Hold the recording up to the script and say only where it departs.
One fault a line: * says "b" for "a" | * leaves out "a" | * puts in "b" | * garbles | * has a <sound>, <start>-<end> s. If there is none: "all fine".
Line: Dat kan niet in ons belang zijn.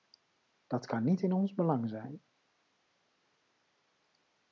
all fine